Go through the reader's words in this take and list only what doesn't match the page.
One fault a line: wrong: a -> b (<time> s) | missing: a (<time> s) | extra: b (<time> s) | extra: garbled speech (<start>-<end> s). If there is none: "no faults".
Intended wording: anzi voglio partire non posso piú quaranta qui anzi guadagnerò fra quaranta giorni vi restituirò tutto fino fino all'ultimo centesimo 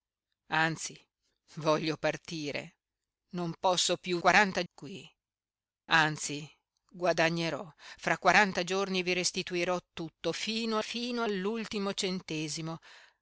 no faults